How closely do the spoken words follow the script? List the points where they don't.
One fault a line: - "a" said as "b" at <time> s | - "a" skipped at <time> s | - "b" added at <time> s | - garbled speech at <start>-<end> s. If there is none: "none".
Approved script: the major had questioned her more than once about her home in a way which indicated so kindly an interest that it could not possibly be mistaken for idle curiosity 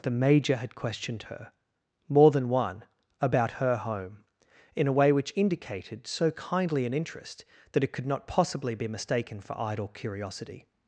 - "once" said as "one" at 2.5 s